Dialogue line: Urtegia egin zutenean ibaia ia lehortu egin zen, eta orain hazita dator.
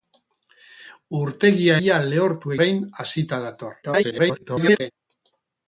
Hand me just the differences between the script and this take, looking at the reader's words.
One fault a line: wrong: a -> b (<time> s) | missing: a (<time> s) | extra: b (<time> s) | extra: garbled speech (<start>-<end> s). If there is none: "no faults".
missing: egin zutenean ibaia (1.7 s)
missing: egin zen eta (2.6 s)
extra: garbled speech (3.8-4.9 s)